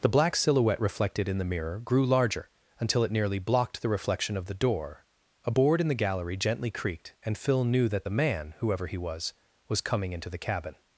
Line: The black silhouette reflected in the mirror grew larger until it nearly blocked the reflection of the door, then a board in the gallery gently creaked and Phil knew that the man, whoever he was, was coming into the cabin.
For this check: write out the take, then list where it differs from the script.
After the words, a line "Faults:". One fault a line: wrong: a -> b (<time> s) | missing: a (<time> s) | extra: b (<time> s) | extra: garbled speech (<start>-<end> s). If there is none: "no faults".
The black silhouette reflected in the mirror grew larger until it nearly blocked the reflection of the door, a board in the gallery gently creaked and Phil knew that the man, whoever he was, was coming into the cabin.
Faults:
missing: then (5.0 s)